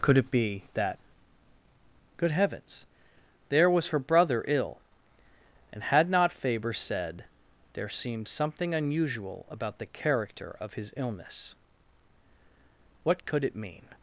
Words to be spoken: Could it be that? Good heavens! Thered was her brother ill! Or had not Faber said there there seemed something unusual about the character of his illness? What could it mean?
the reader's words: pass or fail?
fail